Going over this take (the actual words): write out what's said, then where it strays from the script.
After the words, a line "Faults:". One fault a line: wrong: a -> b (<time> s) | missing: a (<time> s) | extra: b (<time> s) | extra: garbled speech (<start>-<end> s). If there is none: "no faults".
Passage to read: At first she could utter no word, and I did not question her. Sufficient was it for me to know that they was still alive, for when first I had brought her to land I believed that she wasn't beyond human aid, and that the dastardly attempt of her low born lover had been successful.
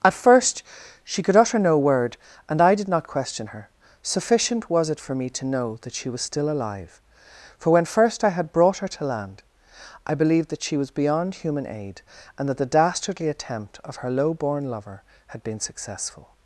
At first she could utter no word, and I did not question her. Sufficient was it for me to know that she was still alive, for when first I had brought her to land I believed that she was beyond human aid, and that the dastardly attempt of her low born lover had been successful.
Faults:
wrong: they -> she (5.9 s)
wrong: wasn't -> was (10.8 s)